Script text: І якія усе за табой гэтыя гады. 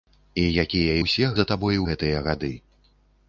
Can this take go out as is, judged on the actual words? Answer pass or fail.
pass